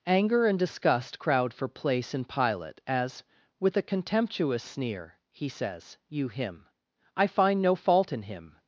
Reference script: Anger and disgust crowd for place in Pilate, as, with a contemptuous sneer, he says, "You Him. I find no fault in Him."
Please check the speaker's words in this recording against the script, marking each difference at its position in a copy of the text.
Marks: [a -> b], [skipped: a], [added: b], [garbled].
Anger and disgust crowd for place in Pilate, as, with a contemptuous sneer, he says, "You Him. I find no fault in Him."